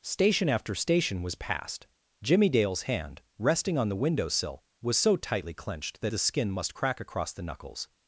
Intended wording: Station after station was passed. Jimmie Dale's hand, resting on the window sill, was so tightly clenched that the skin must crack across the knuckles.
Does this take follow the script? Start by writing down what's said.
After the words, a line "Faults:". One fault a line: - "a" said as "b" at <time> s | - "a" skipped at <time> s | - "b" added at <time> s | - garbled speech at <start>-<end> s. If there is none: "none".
Station after station was passed. Jimmie Dale's hand, resting on the window sill, was so tightly clenched that the skin must crack across the knuckles.
Faults:
none